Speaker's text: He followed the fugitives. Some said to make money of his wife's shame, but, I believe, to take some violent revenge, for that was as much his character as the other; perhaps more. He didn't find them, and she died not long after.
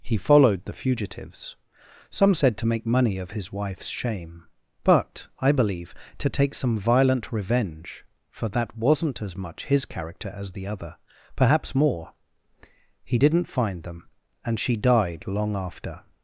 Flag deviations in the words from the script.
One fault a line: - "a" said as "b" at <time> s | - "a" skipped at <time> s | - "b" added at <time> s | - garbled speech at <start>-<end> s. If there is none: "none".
- "was" said as "wasn't" at 8.8 s
- "not" skipped at 15.3 s